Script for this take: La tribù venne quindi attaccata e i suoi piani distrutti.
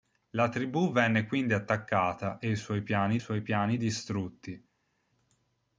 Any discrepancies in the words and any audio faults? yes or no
yes